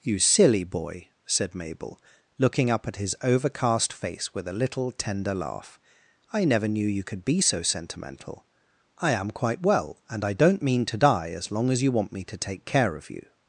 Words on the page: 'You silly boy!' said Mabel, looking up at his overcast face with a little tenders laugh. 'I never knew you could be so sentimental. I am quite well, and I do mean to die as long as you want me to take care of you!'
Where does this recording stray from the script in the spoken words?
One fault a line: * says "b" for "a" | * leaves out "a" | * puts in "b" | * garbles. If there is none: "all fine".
* says "tender" for "tenders"
* says "don't" for "do"